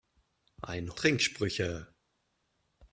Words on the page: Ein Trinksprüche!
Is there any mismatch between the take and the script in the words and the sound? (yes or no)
no